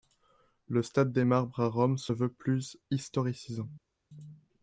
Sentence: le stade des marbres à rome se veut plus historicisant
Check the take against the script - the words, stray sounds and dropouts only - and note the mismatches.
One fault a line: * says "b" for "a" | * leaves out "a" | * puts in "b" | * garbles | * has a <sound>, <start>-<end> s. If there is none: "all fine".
all fine